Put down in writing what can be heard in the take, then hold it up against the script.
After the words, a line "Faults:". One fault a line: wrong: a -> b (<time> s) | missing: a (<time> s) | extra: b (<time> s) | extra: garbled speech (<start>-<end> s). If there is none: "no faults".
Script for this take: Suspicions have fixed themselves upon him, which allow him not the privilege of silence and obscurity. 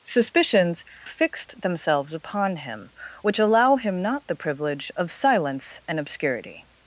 Suspicions fixed themselves upon him, which allow him not the privilege of silence and obscurity.
Faults:
missing: have (0.8 s)